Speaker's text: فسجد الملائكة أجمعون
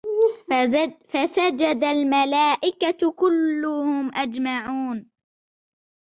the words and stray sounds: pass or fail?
fail